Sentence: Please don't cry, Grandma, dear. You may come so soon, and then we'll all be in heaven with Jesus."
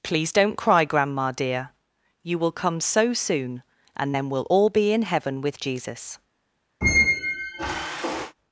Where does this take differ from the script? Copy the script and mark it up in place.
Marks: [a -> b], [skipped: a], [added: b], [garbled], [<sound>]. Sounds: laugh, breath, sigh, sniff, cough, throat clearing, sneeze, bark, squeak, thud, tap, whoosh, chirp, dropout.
Please don't cry, Grandma, dear. You [may -> will] come so soon, and then we'll all be in heaven with Jesus." [squeak]